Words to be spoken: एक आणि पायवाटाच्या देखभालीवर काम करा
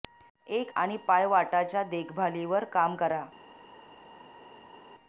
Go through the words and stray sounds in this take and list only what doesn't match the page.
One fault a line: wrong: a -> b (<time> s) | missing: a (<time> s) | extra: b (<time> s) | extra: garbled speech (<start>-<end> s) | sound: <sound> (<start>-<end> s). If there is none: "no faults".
no faults